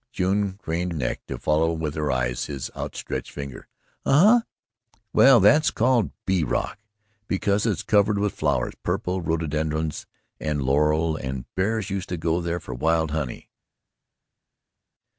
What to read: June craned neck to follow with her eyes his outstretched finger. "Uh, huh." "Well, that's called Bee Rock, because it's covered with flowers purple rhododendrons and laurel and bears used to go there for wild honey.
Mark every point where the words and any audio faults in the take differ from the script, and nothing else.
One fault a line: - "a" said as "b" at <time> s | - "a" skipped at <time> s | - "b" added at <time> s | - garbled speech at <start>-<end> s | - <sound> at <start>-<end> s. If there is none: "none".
none